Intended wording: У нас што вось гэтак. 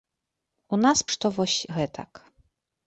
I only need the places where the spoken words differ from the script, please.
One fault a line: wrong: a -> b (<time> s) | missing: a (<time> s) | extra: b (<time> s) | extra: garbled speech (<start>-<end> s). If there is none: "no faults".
no faults